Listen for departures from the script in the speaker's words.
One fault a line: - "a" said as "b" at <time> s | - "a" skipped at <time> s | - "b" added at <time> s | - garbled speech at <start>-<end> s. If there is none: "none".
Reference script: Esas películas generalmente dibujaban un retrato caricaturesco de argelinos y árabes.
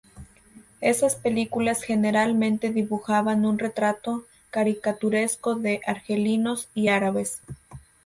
none